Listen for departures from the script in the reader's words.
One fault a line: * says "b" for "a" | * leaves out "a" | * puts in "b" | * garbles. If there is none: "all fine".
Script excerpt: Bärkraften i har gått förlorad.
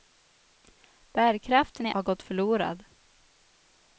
all fine